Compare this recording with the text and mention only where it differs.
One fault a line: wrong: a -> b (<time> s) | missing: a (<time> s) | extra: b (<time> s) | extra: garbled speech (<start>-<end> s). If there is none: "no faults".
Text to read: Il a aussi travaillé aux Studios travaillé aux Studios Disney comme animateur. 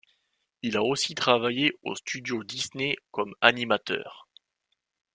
missing: travaillé aux Studios (2.4 s)